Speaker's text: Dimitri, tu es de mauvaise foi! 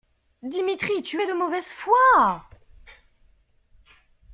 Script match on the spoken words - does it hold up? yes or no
yes